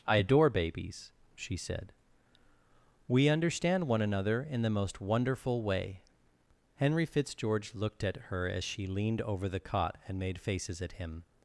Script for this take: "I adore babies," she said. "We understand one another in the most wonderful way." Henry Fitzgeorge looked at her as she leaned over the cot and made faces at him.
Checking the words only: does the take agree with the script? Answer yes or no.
yes